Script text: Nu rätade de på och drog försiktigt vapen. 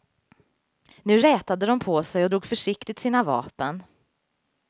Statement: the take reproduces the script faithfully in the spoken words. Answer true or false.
false